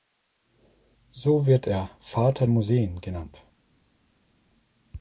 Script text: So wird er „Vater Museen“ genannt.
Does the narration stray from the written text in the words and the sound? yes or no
no